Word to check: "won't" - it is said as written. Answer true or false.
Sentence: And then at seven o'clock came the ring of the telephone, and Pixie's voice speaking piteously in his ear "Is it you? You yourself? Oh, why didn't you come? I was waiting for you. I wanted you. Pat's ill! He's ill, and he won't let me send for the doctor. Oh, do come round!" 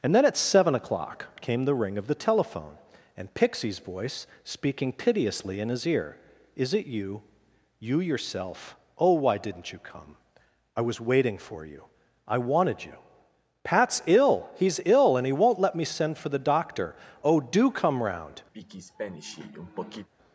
true